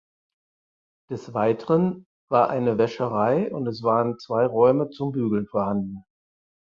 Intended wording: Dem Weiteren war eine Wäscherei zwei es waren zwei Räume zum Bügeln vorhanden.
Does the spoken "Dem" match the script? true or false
false